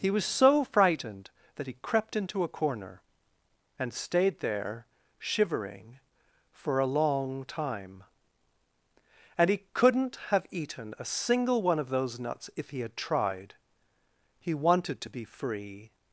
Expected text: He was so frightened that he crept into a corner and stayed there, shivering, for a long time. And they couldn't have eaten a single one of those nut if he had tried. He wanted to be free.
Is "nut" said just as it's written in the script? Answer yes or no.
no